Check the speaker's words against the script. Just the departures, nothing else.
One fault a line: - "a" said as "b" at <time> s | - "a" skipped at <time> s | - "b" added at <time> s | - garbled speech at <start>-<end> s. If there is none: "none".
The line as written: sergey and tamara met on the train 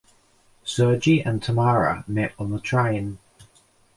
none